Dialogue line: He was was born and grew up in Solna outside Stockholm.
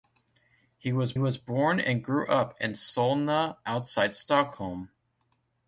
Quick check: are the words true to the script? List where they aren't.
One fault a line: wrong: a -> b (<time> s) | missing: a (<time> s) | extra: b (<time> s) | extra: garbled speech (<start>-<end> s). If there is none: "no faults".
no faults